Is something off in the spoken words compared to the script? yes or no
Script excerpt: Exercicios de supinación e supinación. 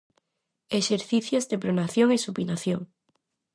yes